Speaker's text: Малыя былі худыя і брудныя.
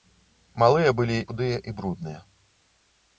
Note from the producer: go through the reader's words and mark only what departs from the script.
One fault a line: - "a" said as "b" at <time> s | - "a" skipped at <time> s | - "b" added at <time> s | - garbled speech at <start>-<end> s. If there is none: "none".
none